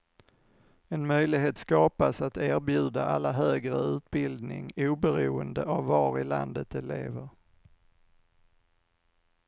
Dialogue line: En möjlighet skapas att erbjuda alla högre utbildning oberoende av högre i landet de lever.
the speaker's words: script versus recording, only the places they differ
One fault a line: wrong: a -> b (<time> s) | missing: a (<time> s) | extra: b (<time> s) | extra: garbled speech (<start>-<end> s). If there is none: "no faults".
wrong: högre -> var (5.8 s)